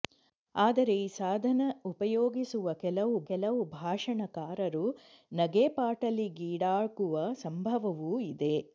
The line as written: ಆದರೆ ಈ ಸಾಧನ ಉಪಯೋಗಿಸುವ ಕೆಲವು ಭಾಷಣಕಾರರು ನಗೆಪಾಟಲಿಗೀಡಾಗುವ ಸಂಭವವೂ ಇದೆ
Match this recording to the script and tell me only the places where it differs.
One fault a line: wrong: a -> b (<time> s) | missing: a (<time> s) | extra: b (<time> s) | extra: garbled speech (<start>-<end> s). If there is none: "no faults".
extra: ಕೆಲವು (3.3 s)